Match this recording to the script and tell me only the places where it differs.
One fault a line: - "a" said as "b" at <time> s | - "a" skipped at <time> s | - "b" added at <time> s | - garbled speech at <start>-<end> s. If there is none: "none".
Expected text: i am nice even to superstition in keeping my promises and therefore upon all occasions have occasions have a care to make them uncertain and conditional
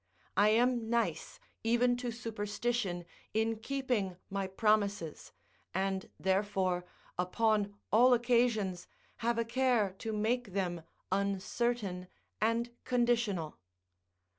- "occasions have" skipped at 9.4 s